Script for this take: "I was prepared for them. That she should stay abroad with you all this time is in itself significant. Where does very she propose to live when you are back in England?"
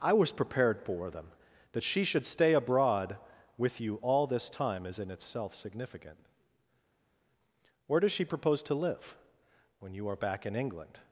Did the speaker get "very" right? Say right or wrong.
wrong